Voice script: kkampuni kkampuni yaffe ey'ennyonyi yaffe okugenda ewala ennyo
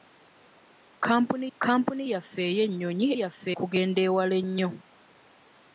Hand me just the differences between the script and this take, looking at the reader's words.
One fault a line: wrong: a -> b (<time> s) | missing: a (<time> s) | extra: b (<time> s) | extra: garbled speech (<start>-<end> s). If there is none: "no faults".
no faults